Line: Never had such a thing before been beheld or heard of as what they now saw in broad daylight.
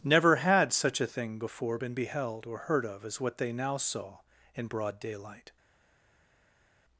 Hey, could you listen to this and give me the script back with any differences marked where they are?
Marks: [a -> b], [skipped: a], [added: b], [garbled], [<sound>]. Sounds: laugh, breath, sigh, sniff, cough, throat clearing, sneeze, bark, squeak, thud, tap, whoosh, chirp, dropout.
Never had such a thing before been beheld or heard of as what they now saw in broad daylight.